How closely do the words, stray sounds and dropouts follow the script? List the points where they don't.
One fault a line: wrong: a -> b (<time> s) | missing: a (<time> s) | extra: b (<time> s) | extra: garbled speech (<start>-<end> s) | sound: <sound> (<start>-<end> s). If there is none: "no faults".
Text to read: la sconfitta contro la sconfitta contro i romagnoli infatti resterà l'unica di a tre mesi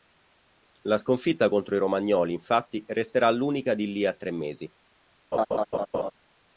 missing: la sconfitta contro (1.7 s)
extra: lì (3.9 s)
sound: laugh (5.3-6.1 s)